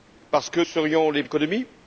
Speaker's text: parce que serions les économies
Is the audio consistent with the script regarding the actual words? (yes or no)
yes